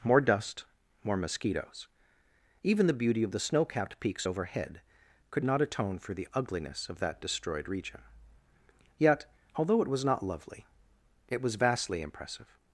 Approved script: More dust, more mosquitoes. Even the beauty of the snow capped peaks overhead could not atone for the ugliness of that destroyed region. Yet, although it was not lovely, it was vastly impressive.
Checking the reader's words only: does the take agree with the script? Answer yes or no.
yes